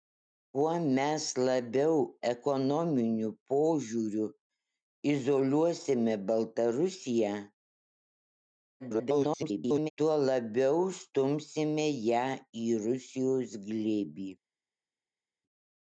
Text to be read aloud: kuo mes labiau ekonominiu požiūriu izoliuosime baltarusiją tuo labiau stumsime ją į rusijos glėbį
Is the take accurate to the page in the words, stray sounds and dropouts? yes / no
no